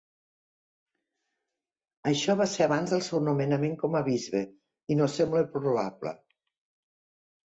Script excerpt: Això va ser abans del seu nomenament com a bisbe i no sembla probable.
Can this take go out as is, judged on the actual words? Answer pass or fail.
pass